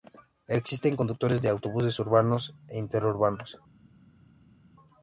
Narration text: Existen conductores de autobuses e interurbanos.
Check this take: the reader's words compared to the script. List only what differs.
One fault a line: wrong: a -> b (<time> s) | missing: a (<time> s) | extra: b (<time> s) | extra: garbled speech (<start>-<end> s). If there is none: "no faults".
extra: urbanos (2.0 s)